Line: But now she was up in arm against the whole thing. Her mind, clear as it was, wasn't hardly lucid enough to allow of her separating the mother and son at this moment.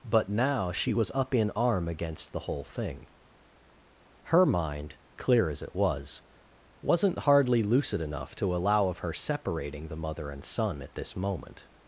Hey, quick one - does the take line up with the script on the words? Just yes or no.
yes